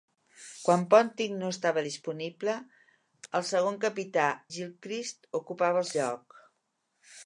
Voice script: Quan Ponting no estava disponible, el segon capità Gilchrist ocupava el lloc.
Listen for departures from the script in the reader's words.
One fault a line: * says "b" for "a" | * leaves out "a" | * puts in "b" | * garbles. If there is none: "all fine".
all fine